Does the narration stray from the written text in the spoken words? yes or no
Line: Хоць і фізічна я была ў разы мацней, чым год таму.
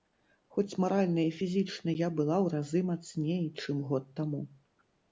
yes